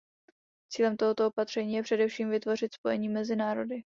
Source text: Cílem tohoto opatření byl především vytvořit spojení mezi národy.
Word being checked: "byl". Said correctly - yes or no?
no